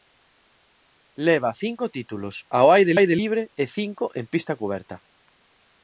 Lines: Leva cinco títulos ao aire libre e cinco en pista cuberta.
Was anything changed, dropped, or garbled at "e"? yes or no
no